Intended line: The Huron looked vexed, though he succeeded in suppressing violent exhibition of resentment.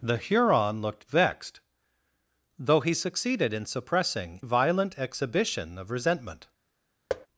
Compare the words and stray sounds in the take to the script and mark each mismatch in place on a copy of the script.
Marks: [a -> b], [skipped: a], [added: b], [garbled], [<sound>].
The Huron looked vexed, though he succeeded in suppressing violent exhibition of resentment. [thud]